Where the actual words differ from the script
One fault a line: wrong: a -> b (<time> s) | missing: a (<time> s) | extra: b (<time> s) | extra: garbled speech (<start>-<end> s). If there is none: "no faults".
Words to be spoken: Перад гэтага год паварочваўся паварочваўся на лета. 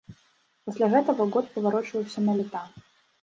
wrong: Перад -> Пасля (0.7 s)
missing: паварочваўся (2.2 s)